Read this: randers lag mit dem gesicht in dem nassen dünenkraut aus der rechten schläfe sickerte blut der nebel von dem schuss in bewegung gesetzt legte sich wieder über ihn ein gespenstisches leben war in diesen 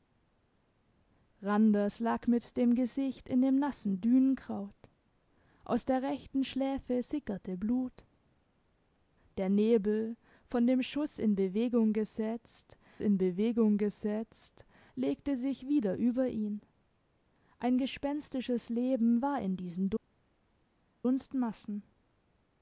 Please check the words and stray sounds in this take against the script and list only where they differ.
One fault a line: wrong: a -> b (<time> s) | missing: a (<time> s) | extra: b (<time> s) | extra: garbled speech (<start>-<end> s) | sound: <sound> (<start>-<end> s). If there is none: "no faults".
extra: in bewegung gesetzt (13.0 s)